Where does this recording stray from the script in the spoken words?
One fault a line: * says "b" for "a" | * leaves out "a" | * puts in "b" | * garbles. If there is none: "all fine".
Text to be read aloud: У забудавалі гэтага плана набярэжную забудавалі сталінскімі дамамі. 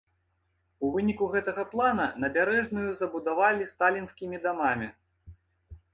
* says "выніку" for "забудавалі"